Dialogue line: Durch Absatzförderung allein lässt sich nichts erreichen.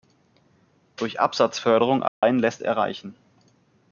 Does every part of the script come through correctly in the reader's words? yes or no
no